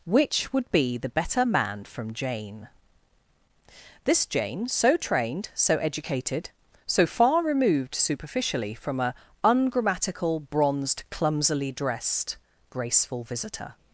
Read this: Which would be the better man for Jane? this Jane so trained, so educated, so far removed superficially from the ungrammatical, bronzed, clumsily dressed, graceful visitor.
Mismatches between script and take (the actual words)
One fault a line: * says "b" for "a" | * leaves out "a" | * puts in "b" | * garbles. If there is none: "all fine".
* says "from" for "for"
* says "a" for "the"